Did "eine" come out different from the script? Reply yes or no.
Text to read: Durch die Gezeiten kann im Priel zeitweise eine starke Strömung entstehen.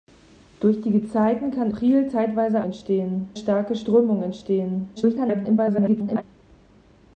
yes